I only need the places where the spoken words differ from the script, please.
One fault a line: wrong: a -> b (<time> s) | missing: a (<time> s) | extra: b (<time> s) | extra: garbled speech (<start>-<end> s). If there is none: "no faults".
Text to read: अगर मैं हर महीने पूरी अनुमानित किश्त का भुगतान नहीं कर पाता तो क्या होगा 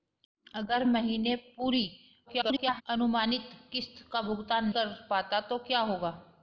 missing: मैं हर (0.8 s)
extra: garbled speech (2.3-2.8 s)
missing: नहीं (4.7 s)